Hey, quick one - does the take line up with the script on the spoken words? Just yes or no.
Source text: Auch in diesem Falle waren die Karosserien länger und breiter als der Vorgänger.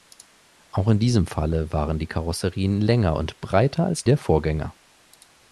yes